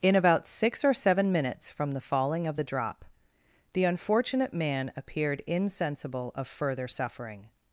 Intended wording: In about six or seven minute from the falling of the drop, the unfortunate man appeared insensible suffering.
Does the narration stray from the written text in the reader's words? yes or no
yes